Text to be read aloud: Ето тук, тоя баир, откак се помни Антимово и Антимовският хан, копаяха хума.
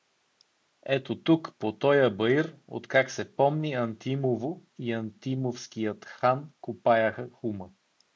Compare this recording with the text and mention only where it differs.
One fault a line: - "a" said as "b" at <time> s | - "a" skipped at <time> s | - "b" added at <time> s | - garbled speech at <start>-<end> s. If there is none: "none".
- "по" added at 1.6 s